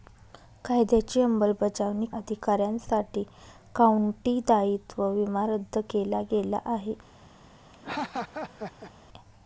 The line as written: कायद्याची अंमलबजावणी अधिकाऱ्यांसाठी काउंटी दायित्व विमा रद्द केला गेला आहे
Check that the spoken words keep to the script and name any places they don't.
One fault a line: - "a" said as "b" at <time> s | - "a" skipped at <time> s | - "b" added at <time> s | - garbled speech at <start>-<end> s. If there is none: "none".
none